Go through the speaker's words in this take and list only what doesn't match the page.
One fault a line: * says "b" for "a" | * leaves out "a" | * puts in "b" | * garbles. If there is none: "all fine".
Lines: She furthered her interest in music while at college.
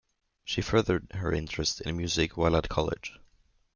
all fine